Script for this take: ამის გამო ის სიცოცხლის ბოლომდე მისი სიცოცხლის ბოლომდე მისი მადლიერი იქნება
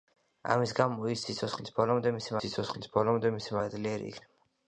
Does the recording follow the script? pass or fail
pass